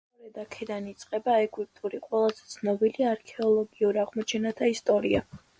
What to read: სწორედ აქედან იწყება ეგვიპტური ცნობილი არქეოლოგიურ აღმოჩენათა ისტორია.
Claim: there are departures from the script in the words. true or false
true